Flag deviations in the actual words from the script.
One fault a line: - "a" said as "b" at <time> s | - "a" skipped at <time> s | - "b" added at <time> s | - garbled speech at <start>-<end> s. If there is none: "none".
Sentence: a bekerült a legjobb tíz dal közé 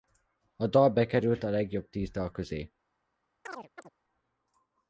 - "dal" added at 0.7 s